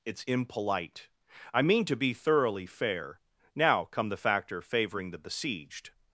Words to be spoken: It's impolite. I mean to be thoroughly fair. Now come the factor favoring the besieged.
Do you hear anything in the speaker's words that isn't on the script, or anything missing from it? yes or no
no